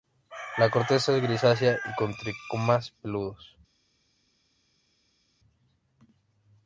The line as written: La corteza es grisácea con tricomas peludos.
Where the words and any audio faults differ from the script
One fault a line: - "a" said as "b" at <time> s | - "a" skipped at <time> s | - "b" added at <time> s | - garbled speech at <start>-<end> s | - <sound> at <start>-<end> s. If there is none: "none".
- "y" added at 1.7 s